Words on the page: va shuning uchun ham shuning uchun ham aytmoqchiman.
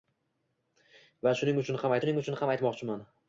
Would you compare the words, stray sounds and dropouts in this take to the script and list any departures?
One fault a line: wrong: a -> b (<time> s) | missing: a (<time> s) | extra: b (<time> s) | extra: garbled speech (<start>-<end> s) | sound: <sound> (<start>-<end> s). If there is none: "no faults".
no faults